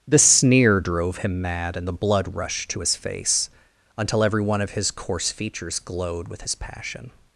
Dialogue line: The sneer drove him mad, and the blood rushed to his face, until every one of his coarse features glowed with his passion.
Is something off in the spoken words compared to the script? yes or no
no